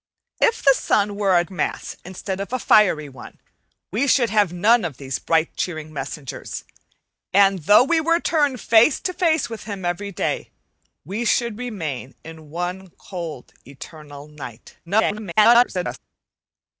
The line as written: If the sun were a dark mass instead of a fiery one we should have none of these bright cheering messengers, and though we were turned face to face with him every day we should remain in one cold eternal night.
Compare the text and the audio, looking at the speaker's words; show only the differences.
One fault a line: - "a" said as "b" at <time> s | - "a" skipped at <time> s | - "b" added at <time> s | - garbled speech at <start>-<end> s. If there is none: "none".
- "dark" skipped at 1.4 s
- garbled speech at 14.9-16.0 s